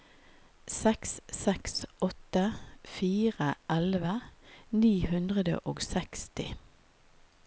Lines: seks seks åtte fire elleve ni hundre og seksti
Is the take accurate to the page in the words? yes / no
yes